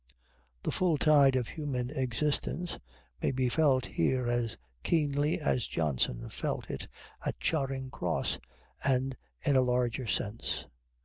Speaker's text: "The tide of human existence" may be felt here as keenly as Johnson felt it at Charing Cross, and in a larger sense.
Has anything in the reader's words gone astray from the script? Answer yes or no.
yes